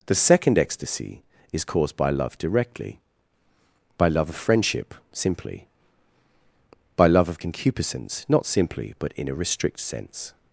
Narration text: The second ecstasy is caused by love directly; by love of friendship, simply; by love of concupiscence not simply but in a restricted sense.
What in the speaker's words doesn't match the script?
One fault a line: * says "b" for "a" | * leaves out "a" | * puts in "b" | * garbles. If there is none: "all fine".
* says "restrict" for "restricted"